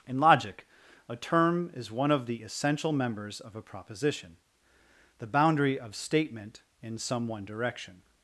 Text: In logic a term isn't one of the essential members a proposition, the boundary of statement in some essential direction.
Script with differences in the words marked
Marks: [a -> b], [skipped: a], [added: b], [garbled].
In logic a term [isn't -> is] one of the essential members [added: of] a proposition, the boundary of statement in some [essential -> one] direction.